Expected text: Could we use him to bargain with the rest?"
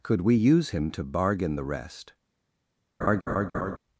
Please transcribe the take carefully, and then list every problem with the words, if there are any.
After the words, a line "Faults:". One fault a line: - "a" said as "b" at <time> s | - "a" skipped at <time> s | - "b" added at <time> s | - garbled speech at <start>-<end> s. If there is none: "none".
Could we use him to bargain the rest?"
Faults:
- "with" skipped at 1.6 s